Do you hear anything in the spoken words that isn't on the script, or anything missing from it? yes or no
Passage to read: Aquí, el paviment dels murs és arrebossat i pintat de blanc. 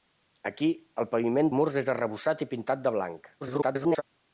yes